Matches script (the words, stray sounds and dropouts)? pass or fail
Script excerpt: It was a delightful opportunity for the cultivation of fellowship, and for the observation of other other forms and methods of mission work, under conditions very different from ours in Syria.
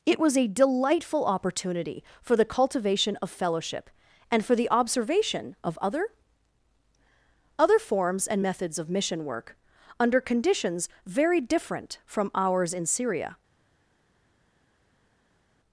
pass